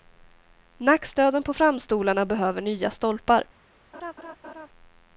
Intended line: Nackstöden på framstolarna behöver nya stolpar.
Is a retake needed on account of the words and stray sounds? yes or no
yes